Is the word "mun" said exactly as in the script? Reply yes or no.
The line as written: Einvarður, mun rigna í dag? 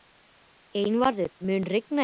yes